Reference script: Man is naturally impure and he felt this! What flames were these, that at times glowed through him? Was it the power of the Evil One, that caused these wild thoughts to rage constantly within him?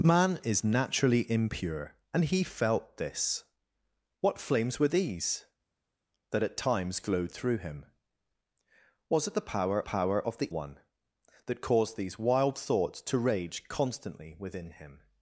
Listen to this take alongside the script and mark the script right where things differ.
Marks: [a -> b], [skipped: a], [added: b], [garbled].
Man is naturally impure and he felt this! What flames were these, that at times glowed through him? Was it the power [added: power] of the [skipped: Evil] One, that caused these wild thoughts to rage constantly within him?